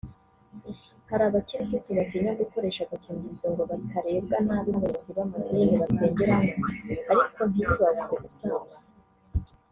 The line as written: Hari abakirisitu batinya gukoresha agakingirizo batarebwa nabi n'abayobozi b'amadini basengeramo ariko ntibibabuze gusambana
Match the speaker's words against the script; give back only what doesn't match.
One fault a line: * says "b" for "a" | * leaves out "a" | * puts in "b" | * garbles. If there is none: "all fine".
* puts in "ngo"